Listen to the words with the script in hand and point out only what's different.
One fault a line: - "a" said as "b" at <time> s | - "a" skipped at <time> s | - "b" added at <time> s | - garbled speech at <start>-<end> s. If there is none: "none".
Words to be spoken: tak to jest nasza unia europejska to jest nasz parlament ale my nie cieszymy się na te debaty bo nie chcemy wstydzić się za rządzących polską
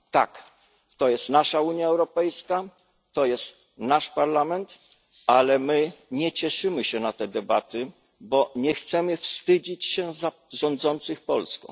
none